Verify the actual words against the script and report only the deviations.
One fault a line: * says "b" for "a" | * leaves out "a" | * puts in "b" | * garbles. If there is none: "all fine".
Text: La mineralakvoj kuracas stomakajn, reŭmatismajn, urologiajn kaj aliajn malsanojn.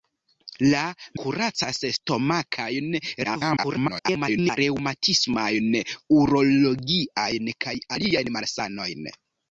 * leaves out "mineralakvoj"
* garbles